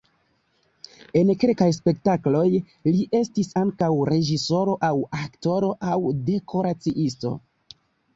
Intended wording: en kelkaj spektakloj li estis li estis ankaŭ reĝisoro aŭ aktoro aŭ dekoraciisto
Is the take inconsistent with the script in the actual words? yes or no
yes